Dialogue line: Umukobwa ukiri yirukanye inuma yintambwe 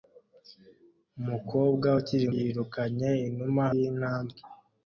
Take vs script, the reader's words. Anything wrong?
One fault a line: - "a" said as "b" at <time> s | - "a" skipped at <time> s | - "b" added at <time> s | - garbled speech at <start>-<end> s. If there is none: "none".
none